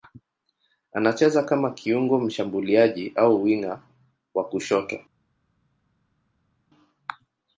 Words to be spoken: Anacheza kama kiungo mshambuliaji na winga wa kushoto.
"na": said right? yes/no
no